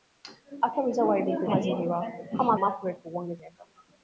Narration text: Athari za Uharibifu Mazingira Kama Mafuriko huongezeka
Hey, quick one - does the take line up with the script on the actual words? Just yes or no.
yes